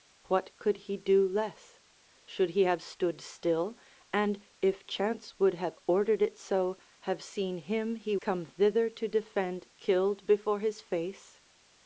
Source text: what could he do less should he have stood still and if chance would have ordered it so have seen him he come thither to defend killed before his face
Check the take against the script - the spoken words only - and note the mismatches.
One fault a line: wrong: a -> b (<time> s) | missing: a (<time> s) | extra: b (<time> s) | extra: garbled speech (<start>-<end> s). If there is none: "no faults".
no faults